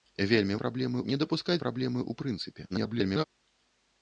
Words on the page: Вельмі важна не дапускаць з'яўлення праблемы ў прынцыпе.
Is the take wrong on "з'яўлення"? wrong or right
wrong